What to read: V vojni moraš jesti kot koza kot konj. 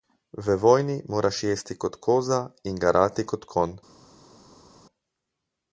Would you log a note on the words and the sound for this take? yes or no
yes